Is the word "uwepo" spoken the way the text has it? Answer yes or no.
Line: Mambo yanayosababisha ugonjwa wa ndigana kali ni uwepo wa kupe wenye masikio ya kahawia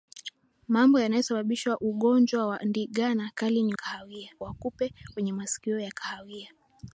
no